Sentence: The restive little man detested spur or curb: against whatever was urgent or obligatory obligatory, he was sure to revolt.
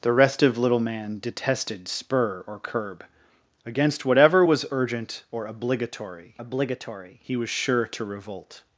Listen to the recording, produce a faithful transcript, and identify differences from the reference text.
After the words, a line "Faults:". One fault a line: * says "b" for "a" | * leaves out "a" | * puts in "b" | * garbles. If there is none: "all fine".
The restive little man detested spur or curb: against whatever was urgent or obligatory obligatory, he was sure to revolt.
Faults:
all fine